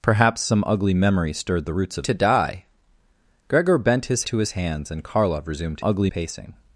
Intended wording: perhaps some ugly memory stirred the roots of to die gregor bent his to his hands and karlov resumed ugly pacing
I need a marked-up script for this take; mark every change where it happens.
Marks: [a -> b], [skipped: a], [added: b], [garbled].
perhaps some ugly memory stirred the roots of to die gregor bent his to his hands and karlov resumed ugly pacing